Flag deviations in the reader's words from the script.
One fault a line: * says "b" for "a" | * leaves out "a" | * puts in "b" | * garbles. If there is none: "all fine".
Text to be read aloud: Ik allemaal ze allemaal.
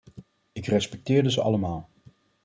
* says "respecteerde" for "allemaal"